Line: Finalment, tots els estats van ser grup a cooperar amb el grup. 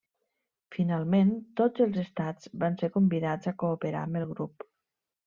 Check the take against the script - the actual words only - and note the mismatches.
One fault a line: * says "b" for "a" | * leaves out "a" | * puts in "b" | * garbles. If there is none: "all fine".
* says "convidats" for "grup"